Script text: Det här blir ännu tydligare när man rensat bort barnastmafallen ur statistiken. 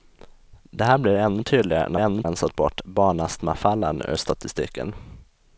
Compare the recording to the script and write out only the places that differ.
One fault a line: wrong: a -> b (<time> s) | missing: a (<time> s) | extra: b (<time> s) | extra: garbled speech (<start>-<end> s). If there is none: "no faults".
wrong: man -> ännu (1.9 s)